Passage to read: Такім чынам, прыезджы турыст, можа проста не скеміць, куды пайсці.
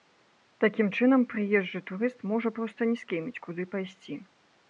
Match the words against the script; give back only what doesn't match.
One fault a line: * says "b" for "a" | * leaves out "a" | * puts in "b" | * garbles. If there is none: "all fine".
all fine